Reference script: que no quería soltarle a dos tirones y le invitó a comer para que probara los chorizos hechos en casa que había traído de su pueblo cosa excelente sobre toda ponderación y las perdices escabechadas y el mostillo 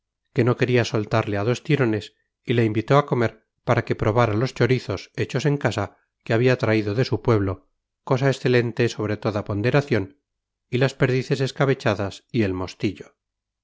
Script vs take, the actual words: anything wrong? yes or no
no